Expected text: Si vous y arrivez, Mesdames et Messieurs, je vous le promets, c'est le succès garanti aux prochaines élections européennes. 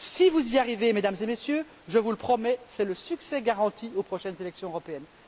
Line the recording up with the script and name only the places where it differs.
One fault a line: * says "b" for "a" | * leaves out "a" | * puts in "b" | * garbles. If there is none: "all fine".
all fine